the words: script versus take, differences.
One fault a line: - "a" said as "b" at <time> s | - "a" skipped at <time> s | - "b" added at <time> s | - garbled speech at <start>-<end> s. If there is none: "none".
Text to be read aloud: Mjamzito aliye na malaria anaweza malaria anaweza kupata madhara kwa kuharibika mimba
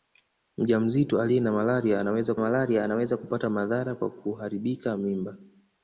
none